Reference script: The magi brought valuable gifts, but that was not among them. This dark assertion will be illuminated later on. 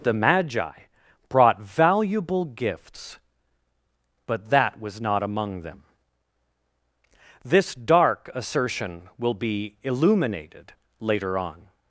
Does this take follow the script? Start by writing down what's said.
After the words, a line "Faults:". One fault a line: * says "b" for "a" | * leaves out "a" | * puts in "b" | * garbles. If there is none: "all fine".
The magi brought valuable gifts, but that was not among them. This dark assertion will be illuminated later on.
Faults:
all fine